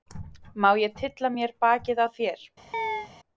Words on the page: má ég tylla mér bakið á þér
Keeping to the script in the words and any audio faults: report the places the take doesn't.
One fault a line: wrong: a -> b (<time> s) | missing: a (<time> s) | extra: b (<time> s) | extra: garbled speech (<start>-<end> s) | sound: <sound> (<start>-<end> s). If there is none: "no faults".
sound: chirp (2.7-3.1 s)